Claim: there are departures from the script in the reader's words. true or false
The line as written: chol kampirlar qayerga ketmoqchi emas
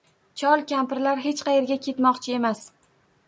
true